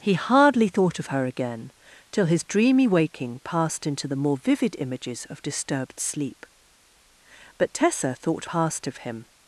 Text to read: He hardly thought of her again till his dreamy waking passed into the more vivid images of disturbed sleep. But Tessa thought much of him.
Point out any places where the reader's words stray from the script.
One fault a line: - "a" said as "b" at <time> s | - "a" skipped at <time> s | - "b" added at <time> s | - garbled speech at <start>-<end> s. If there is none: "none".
- "much" said as "passed" at 8.4 s